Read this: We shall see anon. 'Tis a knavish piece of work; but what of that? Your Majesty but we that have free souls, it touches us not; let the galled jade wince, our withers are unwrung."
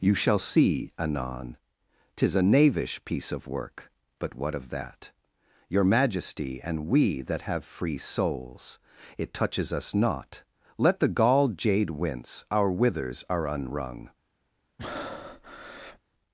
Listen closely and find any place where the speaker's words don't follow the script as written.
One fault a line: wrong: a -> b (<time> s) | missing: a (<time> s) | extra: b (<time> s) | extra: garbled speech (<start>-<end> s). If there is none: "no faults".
wrong: We -> You (0.0 s)
wrong: but -> and (6.6 s)